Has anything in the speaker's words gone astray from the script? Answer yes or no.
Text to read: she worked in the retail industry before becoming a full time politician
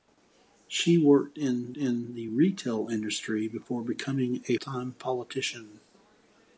yes